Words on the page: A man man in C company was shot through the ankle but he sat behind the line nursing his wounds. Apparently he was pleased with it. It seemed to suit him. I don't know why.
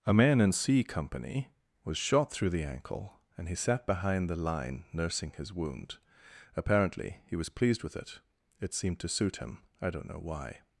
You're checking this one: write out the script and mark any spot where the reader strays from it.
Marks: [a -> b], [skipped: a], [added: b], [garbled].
A man [skipped: man] in C company was shot through the ankle [but -> and] he sat behind the line nursing his [wounds. -> wound] Apparently he was pleased with it. It seemed to suit him. I don't know why.